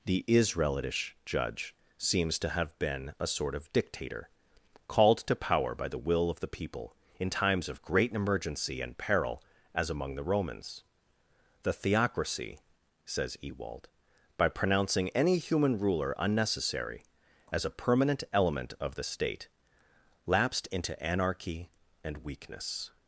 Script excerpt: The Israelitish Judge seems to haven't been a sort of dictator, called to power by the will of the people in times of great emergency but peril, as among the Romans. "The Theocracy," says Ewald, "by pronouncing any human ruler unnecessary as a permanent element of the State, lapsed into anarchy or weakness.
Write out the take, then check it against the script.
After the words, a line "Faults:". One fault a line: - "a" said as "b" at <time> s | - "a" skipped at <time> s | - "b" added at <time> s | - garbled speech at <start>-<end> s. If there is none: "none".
The Israelitish Judge seems to have been a sort of dictator, called to power by the will of the people in times of great emergency and peril, as among the Romans. "The Theocracy," says Ewald, "by pronouncing any human ruler unnecessary as a permanent element of the State, lapsed into anarchy and weakness.
Faults:
- "haven't" said as "have" at 2.5 s
- "but" said as "and" at 8.8 s
- "or" said as "and" at 22.0 s